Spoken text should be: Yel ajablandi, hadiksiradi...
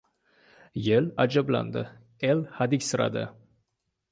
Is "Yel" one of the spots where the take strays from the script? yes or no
no